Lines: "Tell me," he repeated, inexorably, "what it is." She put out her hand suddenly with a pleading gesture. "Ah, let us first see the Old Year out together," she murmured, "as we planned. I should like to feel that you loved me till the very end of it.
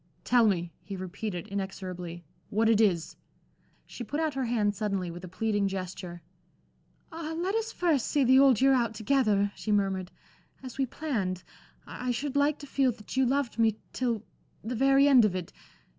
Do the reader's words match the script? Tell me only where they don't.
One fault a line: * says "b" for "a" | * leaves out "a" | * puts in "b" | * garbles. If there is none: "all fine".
all fine